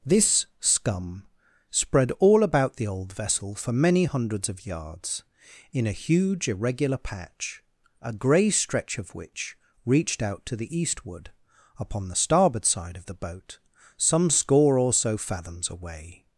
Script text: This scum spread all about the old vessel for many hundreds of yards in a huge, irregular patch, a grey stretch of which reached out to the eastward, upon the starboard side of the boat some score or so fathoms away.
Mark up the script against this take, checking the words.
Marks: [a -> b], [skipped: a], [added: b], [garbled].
This scum spread all about the old vessel for many hundreds of yards in a huge, irregular patch, a grey stretch of which reached out to the eastward, upon the starboard side of the boat some score or so fathoms away.